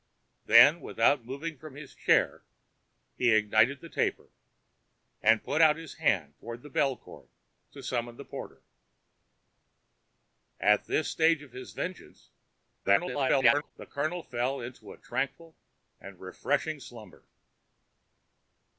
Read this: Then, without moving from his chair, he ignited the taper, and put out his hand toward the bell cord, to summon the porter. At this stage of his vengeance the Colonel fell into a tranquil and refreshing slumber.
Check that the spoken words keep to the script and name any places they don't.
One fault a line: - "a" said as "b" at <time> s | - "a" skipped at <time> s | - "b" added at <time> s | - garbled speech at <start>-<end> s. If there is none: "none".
- garbled speech at 12.8-13.7 s